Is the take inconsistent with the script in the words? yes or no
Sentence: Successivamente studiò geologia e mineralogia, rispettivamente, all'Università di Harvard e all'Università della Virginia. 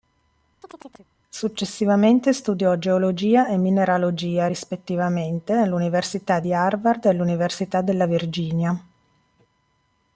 no